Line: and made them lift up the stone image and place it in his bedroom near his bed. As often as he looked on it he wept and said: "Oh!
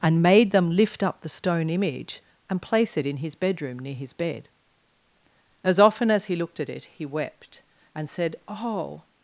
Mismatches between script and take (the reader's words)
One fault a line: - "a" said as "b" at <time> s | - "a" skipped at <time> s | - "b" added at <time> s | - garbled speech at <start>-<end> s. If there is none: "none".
- "on" said as "at" at 6.6 s